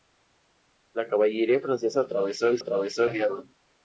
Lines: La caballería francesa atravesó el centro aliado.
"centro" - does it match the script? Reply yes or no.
no